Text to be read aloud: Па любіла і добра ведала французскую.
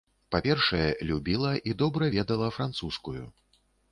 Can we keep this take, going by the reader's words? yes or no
no